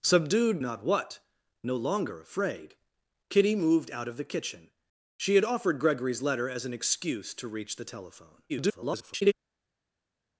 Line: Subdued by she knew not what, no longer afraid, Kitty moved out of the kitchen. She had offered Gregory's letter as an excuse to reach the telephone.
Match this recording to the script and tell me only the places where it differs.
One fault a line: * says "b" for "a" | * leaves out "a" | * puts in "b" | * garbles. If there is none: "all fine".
* leaves out "by she knew"
* garbles